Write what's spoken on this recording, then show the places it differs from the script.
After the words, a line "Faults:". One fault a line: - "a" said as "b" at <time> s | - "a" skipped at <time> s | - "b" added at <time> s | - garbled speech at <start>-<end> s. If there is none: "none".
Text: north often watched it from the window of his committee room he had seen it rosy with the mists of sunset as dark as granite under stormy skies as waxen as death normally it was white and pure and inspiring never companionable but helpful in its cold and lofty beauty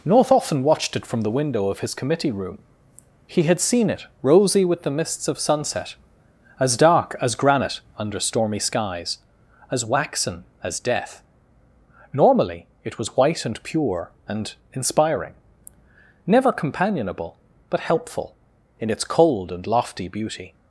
north often watched it from the window of his committee room he had seen it rosy with the mists of sunset as dark as granite under stormy skies as waxen as death normally it was white and pure and inspiring never companionable but helpful in its cold and lofty beauty
Faults:
none